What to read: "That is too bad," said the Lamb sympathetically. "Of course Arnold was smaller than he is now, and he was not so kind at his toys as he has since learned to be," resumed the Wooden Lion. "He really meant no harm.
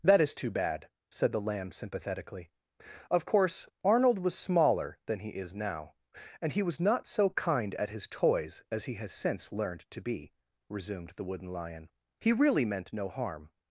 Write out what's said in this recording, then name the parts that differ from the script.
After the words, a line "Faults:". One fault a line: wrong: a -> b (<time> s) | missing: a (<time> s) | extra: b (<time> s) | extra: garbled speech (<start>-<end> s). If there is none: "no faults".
"That is too bad," said the Lamb sympathetically. "Of course Arnold was smaller than he is now, and he was not so kind at his toys as he has since learned to be," resumed the Wooden Lion. "He really meant no harm.
Faults:
no faults